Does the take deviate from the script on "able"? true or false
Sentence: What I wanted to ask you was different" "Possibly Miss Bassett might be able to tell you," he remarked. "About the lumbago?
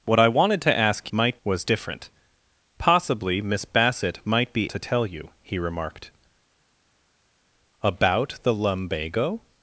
true